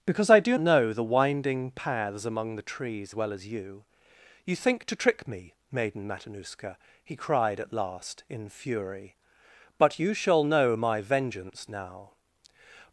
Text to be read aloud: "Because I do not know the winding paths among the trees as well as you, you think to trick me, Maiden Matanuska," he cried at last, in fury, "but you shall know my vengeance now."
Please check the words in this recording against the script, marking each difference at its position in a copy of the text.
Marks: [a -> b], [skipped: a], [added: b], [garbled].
"Because I do [skipped: not] know the winding paths among the trees [skipped: as] well as you, you think to trick me, Maiden Matanuska," he cried at last, in fury, "but you shall know my vengeance now."